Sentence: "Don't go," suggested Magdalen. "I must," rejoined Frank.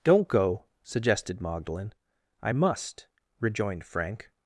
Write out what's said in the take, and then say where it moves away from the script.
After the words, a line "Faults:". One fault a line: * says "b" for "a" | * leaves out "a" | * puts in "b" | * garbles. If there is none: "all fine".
"Don't go," suggested Magdalen. "I must," rejoined Frank.
Faults:
all fine